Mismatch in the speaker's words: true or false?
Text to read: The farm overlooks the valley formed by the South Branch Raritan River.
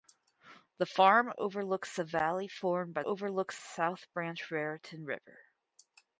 true